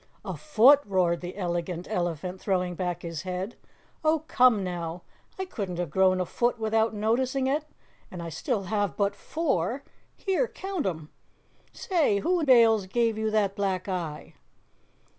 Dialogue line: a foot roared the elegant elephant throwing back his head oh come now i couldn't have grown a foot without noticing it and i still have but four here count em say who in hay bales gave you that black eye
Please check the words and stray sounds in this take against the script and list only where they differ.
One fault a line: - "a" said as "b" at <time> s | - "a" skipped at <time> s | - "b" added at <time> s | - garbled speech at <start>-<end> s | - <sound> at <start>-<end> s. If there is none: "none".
- "hay" skipped at 12.5 s